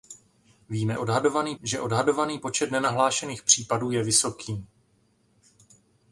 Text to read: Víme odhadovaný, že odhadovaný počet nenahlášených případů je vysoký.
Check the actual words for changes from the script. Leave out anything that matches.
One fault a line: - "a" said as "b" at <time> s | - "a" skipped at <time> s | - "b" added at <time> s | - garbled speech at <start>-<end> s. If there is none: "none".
none